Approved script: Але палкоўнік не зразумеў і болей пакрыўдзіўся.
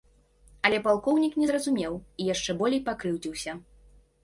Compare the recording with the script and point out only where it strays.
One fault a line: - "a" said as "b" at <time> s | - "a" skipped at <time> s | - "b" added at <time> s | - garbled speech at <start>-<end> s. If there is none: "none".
- "яшчэ" added at 2.3 s